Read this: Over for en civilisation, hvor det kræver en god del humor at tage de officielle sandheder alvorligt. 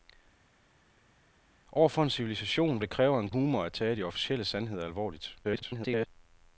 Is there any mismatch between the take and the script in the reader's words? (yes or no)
yes